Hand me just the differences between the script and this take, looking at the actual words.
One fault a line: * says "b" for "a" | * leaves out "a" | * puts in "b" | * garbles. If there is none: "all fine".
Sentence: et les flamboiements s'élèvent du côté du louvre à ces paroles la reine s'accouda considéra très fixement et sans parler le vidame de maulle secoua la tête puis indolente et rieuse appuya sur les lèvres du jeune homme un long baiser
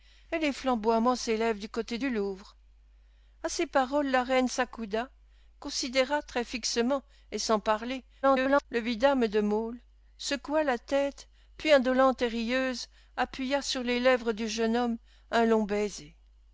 * garbles